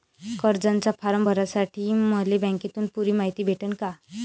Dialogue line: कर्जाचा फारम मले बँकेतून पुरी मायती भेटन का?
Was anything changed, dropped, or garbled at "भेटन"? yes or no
no